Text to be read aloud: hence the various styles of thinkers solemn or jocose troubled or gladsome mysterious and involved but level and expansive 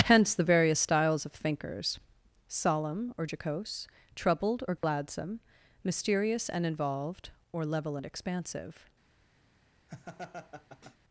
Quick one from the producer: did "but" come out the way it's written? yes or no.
no